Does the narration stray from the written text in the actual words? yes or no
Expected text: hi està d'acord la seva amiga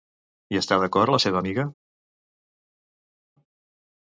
no